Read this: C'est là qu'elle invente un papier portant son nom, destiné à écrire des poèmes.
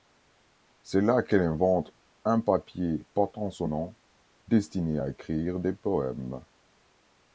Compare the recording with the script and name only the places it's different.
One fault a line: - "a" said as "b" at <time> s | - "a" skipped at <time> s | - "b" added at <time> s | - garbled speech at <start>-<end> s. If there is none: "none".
none